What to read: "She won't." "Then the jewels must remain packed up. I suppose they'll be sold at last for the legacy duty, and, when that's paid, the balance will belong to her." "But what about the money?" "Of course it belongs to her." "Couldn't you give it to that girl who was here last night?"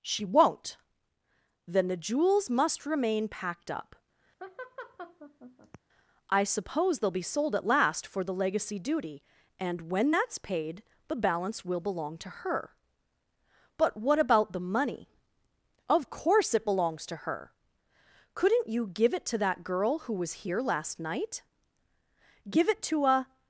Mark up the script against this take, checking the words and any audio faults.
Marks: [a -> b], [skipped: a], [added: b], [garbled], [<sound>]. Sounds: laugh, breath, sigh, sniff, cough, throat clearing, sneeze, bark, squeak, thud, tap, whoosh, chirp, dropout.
"She won't." "Then the jewels must remain packed up. [laugh] I suppose they'll be sold at last for the legacy duty, and, when that's paid, the balance will belong to her." "But what about the money?" "Of course it belongs to her." "Couldn't you give it to that girl who was here last night?" [added: Give it to a]